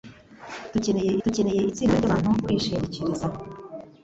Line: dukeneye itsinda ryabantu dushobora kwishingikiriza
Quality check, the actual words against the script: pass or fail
fail